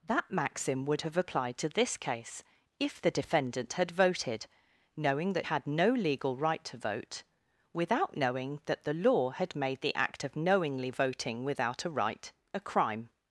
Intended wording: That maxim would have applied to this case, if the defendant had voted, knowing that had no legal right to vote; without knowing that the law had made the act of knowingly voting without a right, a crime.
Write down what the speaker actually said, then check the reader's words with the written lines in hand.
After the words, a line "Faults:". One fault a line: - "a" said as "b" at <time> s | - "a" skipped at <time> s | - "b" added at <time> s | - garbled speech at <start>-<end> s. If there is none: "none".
That maxim would have applied to this case, if the defendant had voted, knowing that had no legal right to vote; without knowing that the law had made the act of knowingly voting without a right, a crime.
Faults:
none